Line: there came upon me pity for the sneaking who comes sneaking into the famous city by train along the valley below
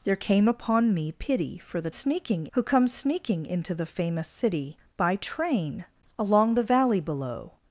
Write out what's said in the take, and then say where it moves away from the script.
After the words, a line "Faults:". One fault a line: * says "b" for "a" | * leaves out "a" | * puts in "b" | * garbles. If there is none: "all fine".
there came upon me pity for the sneaking who comes sneaking into the famous city by train along the valley below
Faults:
all fine